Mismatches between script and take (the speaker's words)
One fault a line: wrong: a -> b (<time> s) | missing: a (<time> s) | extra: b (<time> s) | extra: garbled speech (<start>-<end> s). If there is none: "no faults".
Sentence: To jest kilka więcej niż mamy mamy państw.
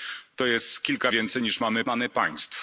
no faults